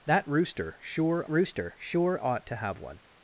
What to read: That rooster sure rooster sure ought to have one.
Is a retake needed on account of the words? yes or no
no